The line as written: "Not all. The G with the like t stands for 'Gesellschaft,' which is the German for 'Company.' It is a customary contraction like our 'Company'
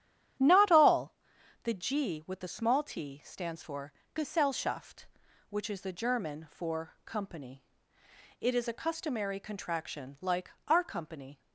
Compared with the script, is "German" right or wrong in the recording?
right